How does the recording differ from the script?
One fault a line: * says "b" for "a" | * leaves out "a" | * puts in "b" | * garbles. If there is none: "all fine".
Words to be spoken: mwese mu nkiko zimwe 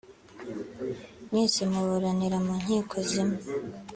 * puts in "muburanira"